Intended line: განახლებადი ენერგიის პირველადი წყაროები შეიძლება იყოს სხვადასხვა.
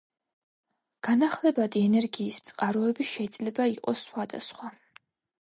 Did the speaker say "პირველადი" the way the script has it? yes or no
no